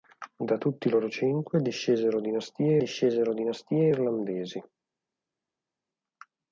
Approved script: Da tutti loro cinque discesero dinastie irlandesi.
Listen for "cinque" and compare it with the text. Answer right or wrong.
right